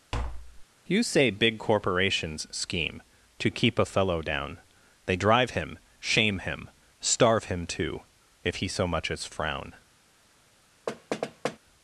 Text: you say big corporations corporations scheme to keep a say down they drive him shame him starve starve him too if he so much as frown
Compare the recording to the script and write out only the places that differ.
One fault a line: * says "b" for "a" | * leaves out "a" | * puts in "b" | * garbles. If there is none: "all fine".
* leaves out "corporations"
* says "fellow" for "say"
* leaves out "starve"